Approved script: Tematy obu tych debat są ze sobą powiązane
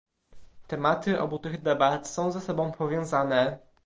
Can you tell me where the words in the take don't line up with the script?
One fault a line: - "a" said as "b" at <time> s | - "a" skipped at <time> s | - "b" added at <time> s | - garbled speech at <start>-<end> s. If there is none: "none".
none